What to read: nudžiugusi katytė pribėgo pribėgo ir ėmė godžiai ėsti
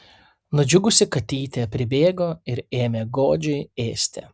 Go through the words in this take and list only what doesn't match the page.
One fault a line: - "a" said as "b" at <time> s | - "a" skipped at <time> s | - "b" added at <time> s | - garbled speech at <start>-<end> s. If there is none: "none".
- "pribėgo" skipped at 2.3 s